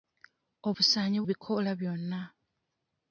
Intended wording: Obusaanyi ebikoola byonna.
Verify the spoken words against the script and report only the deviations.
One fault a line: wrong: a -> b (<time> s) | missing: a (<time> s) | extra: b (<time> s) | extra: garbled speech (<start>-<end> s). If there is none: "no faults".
no faults